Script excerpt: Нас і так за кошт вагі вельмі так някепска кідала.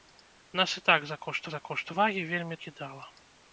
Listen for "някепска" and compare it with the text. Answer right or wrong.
wrong